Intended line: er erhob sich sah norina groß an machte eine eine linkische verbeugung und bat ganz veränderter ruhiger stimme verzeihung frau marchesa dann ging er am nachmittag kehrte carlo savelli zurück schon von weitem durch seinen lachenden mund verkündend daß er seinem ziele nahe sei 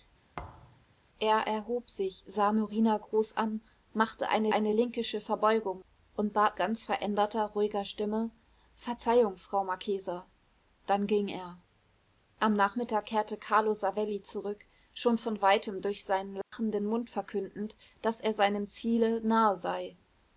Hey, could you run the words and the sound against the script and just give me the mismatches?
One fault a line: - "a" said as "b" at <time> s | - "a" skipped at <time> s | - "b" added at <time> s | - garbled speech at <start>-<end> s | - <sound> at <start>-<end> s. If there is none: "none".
- thud at 0.4-0.9 s
- dropout at 16.4-16.5 s